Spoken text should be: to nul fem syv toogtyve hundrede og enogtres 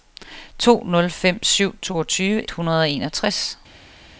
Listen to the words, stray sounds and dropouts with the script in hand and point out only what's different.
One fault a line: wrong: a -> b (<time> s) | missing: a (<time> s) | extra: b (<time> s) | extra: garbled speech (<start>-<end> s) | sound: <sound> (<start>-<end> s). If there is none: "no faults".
no faults